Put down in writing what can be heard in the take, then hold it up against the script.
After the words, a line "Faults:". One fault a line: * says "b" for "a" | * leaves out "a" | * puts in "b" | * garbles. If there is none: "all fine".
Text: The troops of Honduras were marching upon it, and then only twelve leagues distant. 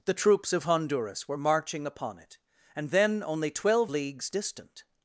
The troops of Honduras were marching upon it, and then only twelve leagues distant.
Faults:
all fine